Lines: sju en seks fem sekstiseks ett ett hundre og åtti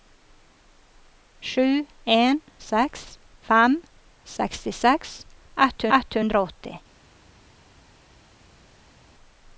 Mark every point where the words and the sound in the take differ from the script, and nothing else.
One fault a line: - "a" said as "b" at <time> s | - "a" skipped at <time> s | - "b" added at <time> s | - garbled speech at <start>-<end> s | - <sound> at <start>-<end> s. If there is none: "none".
none